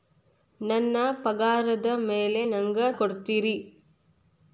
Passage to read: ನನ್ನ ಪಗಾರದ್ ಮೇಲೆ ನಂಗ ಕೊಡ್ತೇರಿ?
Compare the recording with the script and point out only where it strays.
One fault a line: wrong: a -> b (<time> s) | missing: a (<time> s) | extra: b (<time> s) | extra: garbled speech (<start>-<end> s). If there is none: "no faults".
no faults